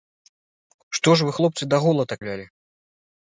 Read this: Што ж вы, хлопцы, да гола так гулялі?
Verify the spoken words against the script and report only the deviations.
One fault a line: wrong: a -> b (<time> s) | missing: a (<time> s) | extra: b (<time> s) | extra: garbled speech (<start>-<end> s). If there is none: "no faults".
no faults